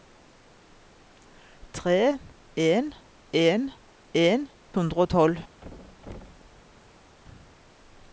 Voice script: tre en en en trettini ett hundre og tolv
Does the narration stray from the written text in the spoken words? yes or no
yes